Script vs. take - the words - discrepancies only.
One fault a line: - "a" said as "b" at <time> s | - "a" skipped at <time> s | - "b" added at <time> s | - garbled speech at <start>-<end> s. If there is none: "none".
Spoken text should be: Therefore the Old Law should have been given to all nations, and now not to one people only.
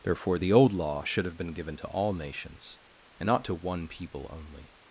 - "now" skipped at 3.3 s